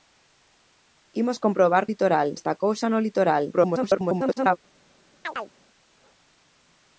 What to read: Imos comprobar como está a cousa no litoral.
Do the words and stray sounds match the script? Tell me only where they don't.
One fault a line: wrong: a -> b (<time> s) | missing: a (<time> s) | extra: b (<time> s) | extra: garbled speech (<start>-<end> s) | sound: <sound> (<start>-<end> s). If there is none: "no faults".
wrong: como -> litoral (1.9 s)
extra: garbled speech (3.5-4.6 s)
sound: chirp (5.2-5.5 s)